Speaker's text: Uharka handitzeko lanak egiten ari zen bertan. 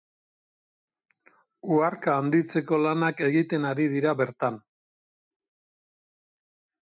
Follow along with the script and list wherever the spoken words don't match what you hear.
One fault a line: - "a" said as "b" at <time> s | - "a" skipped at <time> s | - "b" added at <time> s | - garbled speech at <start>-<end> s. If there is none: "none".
- "zen" said as "dira" at 3.9 s